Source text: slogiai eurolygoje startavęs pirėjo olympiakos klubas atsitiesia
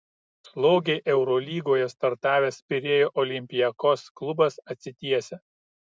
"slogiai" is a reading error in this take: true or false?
false